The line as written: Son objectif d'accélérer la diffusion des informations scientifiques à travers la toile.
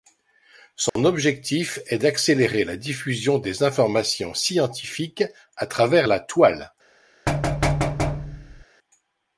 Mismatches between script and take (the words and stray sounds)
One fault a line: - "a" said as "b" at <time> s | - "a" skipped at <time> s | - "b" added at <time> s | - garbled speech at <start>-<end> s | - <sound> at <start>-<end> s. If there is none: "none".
- dropout at 0.9-1.0 s
- "est" added at 1.9 s
- thud at 7.3-8.6 s